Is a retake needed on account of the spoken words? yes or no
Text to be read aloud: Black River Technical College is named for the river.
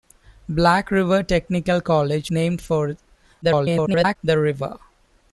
yes